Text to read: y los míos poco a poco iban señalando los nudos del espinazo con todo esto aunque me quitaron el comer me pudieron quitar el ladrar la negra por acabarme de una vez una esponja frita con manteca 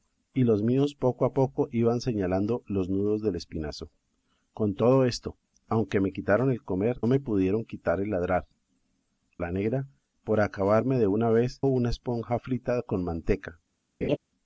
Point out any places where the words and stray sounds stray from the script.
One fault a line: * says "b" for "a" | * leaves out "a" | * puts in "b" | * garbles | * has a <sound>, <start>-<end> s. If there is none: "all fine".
* has a laugh, 14.0-14.2 s